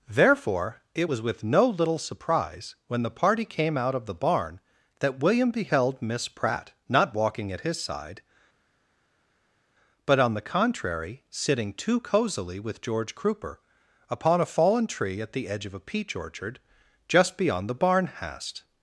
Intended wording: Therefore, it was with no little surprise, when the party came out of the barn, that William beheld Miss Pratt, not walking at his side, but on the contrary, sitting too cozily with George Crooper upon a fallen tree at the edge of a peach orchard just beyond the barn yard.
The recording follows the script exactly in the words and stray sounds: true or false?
false